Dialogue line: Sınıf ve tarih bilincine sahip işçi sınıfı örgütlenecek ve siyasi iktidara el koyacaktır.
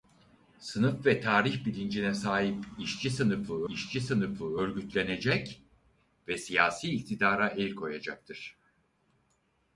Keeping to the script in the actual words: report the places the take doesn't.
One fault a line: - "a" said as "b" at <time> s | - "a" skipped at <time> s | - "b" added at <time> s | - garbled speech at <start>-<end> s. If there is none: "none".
- "işçi sınıfı" added at 3.7 s